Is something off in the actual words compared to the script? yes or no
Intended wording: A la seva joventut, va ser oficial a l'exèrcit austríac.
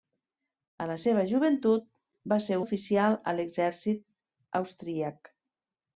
no